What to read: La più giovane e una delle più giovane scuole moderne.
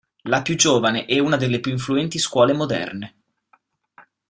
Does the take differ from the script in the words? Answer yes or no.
yes